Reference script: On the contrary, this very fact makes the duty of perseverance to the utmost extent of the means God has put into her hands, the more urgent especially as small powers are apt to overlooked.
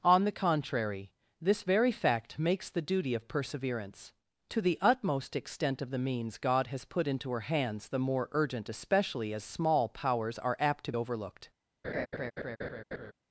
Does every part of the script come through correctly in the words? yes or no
yes